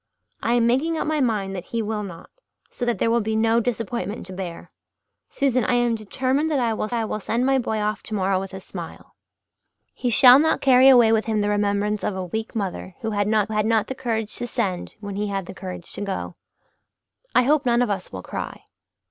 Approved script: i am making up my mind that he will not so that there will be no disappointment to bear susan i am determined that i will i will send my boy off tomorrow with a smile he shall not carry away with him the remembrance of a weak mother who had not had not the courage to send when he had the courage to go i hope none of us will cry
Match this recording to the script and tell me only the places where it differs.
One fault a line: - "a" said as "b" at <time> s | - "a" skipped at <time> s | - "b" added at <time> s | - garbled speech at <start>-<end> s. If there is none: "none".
none